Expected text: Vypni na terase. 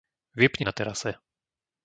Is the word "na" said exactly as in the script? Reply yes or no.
yes